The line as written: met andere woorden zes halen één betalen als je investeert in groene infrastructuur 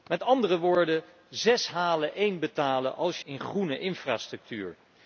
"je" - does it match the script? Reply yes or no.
no